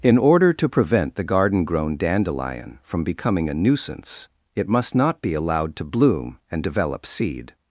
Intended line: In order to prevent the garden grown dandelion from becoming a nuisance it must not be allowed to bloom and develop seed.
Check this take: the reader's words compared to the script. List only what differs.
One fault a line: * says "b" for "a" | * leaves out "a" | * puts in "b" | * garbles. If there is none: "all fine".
all fine